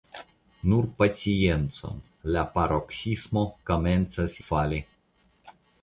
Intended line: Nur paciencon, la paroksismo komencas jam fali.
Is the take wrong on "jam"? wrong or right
wrong